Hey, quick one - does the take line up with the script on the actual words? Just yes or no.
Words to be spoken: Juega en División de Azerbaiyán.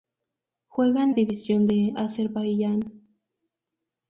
yes